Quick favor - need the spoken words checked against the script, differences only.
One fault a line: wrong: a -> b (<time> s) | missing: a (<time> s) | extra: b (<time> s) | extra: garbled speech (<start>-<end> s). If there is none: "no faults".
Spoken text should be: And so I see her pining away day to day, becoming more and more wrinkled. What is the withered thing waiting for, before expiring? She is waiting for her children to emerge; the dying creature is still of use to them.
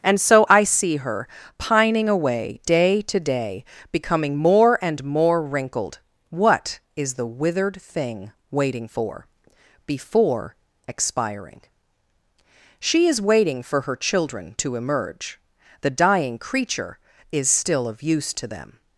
no faults